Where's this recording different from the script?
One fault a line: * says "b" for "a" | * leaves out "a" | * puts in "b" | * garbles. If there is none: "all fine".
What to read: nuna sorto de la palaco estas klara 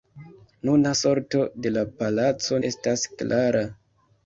all fine